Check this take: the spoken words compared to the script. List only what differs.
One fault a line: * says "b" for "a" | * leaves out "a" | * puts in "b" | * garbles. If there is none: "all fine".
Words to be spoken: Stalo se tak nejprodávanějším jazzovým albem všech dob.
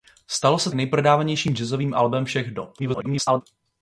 * leaves out "tak"
* garbles